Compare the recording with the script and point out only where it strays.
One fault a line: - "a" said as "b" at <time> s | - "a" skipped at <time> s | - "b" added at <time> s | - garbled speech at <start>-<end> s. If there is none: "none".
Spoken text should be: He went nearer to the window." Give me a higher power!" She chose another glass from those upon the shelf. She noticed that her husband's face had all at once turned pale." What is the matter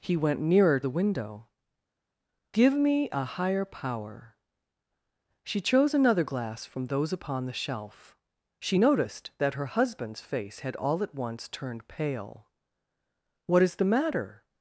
- "to" skipped at 0.8 s